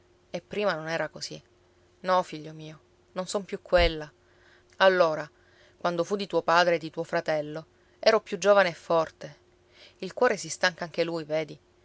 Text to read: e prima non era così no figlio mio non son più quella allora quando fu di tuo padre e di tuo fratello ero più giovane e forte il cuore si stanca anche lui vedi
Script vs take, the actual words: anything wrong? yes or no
no